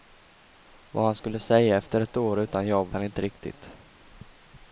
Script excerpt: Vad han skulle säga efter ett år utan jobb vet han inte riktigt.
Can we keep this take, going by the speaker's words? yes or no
no